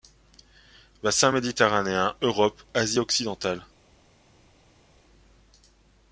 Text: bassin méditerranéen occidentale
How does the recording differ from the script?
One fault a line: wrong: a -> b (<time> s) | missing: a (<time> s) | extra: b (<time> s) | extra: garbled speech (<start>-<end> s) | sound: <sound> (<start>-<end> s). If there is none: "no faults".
extra: europe asie (2.2 s)